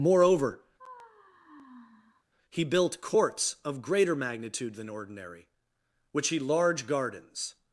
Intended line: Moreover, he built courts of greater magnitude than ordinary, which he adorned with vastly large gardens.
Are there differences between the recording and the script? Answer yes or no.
yes